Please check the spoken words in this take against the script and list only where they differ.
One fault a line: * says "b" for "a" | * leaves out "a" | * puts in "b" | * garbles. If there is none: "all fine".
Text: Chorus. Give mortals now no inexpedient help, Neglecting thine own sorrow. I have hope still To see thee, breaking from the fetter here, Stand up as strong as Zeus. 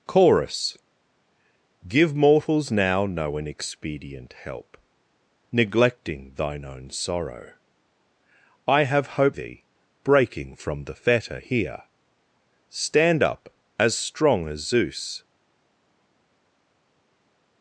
* leaves out "still To see"